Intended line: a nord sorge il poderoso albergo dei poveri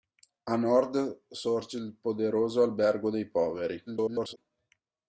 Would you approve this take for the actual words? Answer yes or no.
no